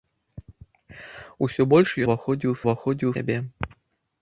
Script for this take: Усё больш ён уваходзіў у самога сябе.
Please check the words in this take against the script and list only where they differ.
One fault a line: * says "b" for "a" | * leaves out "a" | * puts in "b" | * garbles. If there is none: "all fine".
* leaves out "ён"
* says "уваходзіў" for "самога"